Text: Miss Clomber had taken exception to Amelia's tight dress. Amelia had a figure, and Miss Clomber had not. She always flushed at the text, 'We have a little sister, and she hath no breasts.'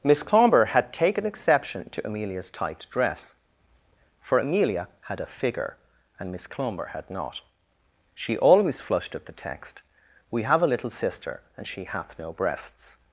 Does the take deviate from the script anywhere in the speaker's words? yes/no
yes